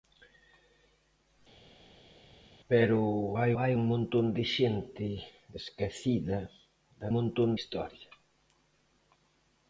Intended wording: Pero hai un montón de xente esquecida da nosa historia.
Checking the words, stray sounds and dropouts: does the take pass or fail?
fail